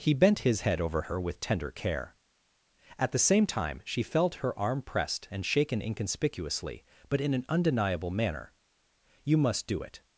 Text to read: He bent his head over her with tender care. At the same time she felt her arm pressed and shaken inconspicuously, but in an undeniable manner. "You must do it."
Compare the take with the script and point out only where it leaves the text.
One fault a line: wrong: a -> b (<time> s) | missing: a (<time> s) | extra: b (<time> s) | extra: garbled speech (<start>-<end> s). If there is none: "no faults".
no faults